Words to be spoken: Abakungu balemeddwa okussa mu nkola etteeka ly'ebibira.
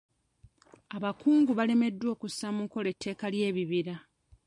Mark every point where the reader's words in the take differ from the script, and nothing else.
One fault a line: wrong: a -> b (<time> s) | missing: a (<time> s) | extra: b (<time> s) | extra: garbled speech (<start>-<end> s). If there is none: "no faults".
no faults